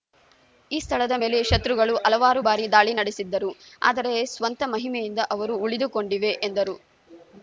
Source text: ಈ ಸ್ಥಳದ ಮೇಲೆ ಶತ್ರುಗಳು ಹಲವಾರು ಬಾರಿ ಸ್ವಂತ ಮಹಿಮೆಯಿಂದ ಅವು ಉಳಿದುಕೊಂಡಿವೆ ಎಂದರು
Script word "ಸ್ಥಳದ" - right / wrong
right